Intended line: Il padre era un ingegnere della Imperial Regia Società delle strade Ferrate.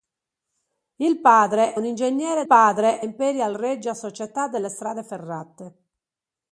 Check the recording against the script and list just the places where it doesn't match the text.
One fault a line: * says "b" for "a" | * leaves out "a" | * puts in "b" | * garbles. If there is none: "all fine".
* leaves out "era"
* says "padre" for "della"